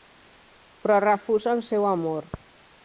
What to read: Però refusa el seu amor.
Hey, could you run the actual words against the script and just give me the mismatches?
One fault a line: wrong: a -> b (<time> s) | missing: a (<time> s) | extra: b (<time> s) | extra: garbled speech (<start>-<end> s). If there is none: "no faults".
no faults